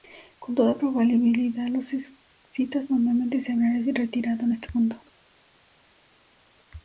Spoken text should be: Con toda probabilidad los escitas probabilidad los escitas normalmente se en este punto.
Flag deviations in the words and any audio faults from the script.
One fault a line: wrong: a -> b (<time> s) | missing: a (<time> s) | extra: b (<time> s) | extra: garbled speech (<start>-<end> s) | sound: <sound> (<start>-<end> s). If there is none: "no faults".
wrong: probabilidad los escitas normalmente se -> normalmente se habrían retirado (2.9 s)